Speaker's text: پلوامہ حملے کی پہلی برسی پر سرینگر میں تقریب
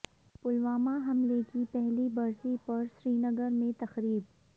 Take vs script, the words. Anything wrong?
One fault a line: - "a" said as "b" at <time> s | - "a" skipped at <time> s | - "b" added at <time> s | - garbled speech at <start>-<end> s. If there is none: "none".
none